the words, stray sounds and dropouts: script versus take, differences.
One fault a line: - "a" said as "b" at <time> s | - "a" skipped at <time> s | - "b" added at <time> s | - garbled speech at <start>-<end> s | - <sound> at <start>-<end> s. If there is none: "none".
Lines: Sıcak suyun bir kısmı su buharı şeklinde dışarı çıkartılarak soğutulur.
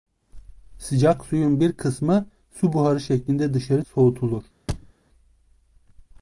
- "çıkartılarak" skipped at 3.9 s
- thud at 4.7-4.9 s